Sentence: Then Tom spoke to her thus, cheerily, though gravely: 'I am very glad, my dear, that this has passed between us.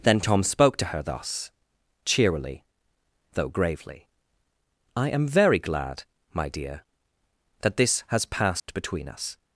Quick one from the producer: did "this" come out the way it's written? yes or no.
yes